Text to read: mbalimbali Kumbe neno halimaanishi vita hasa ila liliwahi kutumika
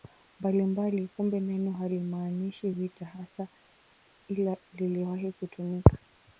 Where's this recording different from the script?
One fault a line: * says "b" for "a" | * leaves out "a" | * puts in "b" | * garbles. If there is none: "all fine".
all fine